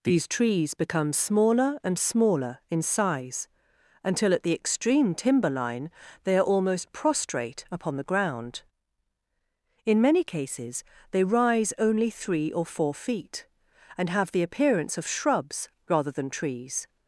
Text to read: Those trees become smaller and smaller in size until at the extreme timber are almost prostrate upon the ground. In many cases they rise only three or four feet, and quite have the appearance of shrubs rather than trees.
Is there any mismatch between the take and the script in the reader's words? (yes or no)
yes